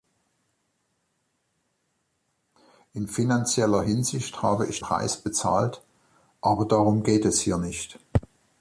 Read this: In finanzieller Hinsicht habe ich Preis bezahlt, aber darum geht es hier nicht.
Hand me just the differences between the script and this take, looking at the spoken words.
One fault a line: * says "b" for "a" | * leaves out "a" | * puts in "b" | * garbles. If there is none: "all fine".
all fine